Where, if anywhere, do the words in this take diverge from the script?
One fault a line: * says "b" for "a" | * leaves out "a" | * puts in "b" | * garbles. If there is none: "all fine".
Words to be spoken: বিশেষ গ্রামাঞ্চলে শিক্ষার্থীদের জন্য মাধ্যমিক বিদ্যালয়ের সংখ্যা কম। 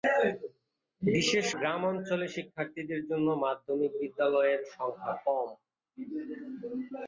all fine